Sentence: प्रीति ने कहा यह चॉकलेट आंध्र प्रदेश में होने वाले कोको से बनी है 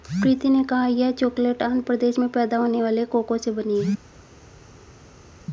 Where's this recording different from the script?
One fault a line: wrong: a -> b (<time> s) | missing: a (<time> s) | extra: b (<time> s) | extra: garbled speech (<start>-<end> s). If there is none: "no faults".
extra: पैदा (2.3 s)